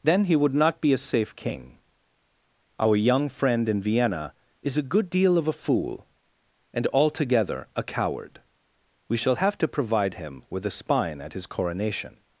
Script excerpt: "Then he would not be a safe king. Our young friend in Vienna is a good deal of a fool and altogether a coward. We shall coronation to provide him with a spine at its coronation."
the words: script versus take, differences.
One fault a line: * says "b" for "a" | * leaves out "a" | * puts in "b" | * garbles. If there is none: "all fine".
* says "have" for "coronation"
* says "his" for "its"